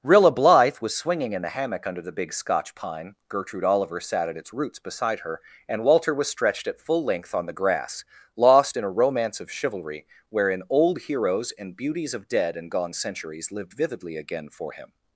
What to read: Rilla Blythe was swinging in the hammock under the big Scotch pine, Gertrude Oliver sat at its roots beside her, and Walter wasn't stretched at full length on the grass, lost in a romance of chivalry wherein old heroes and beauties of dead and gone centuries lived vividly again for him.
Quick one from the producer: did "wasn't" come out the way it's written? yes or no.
no